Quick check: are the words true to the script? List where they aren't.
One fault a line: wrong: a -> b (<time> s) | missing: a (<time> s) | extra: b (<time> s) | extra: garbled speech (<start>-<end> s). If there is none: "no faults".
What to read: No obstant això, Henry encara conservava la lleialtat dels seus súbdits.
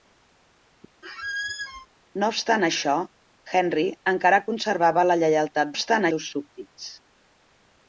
wrong: dels -> obstant (5.7 s)